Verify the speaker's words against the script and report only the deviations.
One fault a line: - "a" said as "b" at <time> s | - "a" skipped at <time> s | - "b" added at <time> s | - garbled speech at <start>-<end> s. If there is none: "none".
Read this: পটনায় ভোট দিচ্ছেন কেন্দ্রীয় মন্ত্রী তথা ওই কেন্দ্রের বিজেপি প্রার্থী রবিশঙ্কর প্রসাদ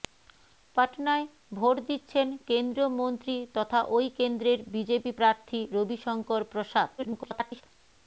- garbled speech at 7.0-7.6 s